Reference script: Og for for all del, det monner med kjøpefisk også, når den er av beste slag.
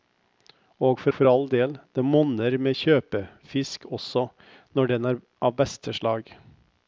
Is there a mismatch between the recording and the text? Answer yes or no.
no